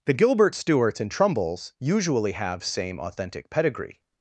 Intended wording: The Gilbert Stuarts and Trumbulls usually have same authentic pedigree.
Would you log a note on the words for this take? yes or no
no